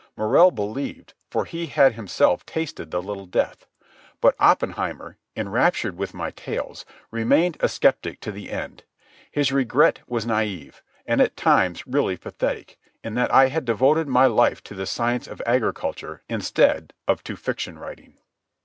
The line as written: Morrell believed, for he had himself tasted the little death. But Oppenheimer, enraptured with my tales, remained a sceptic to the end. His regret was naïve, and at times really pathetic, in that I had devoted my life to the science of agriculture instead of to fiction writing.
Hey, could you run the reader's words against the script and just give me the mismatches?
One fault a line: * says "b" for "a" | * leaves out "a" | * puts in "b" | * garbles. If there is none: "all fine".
all fine